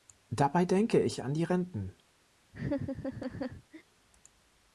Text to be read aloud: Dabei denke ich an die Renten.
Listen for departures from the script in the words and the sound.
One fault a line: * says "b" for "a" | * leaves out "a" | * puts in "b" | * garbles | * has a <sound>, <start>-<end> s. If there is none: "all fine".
* has a laugh, 2.5-3.8 s